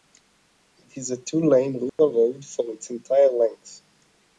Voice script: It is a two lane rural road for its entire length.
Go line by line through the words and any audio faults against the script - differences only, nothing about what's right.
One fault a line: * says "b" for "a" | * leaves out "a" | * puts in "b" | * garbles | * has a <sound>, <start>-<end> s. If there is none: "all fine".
* has a dropout, 1.9-2.0 s